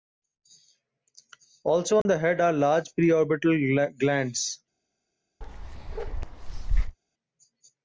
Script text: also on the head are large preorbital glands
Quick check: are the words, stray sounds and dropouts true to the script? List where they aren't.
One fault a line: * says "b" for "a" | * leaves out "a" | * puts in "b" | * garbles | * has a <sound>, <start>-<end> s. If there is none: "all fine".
* has a dropout, 2.0-2.1 s
* has a bark, 5.4-7.0 s